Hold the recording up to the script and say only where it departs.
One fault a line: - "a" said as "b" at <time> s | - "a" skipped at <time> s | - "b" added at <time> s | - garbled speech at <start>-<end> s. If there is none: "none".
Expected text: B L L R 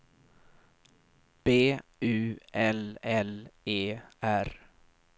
- "U" added at 2.0 s
- "E" added at 3.6 s